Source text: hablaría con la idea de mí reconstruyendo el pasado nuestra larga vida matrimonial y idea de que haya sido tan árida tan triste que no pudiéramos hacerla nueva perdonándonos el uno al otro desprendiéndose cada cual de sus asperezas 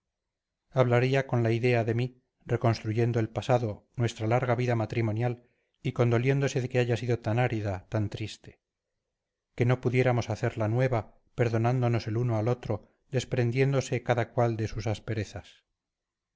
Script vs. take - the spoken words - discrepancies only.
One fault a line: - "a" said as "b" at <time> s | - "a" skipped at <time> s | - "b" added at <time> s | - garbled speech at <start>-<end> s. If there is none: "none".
- "idea" said as "condoliéndose" at 5.9 s